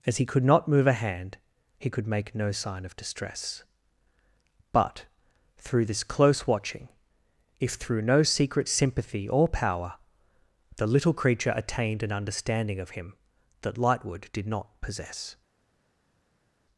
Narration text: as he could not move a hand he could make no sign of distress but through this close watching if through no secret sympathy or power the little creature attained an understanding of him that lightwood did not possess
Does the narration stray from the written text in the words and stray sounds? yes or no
no